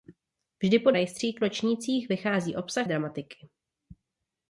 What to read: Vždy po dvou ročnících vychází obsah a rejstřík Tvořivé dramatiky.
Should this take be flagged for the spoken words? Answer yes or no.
yes